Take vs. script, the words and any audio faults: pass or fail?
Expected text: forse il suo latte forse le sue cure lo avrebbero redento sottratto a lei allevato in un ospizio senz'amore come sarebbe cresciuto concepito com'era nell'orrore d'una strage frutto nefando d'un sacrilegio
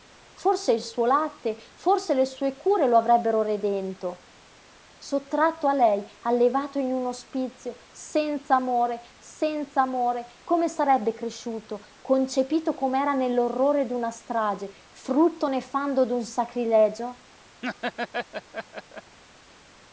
fail